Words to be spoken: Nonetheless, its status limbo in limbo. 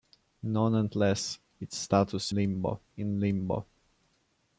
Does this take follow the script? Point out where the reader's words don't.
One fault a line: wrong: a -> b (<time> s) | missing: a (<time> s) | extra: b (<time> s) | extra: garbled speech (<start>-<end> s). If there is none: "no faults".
no faults